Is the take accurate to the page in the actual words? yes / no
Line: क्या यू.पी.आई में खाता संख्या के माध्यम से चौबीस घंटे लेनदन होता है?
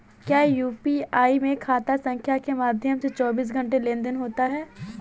yes